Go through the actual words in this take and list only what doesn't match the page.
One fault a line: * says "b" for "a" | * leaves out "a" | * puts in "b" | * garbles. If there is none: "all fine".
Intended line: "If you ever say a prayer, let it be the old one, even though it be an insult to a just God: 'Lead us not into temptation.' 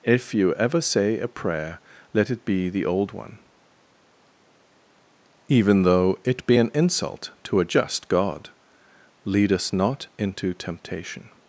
all fine